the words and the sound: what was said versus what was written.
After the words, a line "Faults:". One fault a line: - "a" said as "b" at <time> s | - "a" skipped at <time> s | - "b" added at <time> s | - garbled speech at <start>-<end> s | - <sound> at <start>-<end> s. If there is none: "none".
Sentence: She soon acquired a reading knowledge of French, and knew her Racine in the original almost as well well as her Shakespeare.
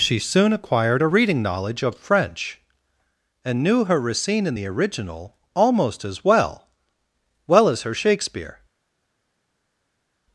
She soon acquired a reading knowledge of French, and knew her Racine in the original almost as well well as her Shakespeare.
Faults:
none